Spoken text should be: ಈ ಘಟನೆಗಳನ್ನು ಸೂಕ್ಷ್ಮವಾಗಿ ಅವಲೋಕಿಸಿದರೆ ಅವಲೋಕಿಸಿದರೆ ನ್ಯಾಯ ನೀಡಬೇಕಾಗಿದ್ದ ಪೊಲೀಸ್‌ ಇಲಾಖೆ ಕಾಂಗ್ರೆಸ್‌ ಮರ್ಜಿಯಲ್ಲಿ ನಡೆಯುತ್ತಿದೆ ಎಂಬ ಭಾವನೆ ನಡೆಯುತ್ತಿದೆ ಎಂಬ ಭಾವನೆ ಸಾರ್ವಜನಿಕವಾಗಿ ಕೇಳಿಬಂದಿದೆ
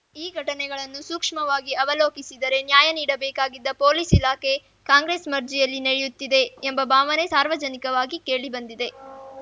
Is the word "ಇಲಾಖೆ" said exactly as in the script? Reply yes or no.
yes